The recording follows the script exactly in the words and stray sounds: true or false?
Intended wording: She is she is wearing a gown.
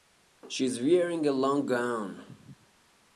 false